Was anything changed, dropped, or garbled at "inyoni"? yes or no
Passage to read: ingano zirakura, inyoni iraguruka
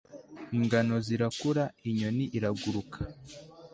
no